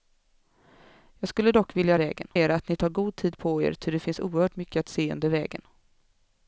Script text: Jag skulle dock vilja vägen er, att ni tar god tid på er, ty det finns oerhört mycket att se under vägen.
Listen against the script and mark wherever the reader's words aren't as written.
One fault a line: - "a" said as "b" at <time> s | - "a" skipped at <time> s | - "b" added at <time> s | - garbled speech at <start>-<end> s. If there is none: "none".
none